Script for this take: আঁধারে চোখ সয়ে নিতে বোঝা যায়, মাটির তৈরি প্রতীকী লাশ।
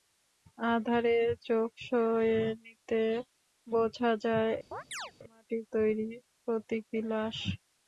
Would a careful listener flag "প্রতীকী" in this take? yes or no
no